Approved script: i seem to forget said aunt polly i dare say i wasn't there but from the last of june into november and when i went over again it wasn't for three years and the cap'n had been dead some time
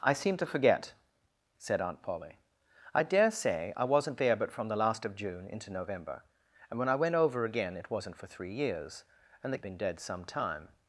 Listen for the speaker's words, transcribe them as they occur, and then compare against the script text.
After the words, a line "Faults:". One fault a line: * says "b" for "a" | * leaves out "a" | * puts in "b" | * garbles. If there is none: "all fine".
i seem to forget said aunt polly i dare say i wasn't there but from the last of june into november and when i went over again it wasn't for three years and the been dead some time
Faults:
* leaves out "cap'n had"